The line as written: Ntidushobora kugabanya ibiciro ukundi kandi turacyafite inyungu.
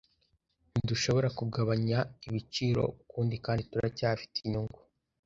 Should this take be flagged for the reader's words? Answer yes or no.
no